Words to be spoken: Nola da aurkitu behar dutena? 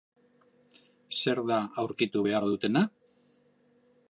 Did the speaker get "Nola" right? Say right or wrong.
wrong